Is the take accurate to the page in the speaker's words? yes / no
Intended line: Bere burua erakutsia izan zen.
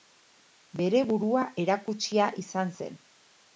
yes